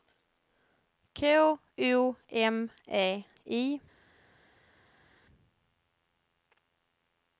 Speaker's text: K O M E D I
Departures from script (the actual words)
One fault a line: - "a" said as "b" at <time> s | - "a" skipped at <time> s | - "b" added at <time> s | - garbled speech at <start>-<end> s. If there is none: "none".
- "D" skipped at 3.2 s